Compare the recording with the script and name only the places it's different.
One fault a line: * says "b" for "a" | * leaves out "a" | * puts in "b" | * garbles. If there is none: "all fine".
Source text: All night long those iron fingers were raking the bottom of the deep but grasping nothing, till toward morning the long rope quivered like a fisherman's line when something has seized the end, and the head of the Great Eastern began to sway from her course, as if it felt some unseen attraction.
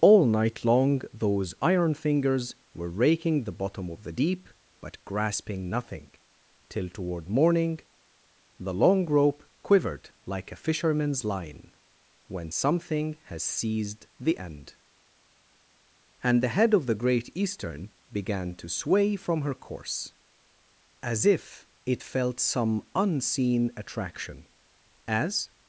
* puts in "As"